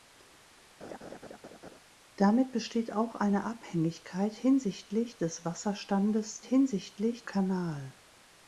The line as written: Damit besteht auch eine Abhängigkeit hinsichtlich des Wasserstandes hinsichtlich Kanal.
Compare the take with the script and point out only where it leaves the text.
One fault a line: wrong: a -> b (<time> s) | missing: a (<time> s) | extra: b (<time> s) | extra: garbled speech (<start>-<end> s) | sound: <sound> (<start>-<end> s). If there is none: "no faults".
sound: laugh (0.8-1.8 s)